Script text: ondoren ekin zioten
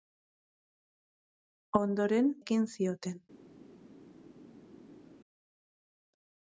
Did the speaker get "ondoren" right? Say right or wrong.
right